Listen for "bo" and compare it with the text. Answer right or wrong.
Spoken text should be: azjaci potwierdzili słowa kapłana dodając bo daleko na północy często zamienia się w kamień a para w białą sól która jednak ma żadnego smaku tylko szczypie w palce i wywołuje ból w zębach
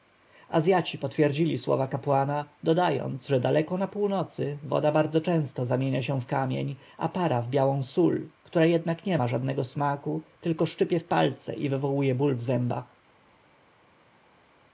wrong